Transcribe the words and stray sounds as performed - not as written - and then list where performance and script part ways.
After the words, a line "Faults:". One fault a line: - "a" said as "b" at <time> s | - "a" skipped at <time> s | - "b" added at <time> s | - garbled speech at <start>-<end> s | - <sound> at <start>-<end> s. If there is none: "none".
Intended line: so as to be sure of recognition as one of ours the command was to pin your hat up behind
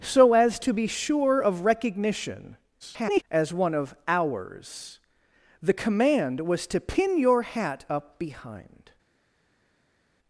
so as to be sure of recognition [garbled] as one of ours the command was to pin your hat up behind
Faults:
- garbled speech at 2.8-3.2 s